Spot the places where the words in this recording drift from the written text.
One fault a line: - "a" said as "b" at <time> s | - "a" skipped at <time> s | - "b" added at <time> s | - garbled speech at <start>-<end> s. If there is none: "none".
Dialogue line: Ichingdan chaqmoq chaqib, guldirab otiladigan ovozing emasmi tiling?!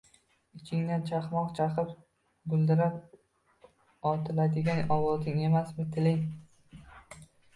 none